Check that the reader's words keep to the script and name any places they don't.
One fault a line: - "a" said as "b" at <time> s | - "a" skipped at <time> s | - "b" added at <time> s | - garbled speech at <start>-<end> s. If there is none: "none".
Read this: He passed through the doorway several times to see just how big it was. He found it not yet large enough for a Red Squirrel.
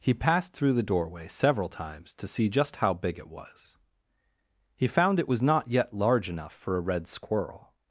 - "was" added at 5.3 s